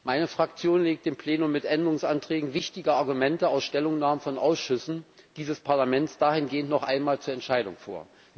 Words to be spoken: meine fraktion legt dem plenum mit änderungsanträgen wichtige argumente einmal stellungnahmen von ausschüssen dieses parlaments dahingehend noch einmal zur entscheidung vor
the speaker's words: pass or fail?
fail